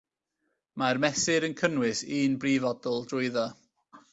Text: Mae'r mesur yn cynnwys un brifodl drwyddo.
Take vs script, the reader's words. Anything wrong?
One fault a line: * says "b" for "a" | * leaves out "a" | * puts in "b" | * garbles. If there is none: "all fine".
all fine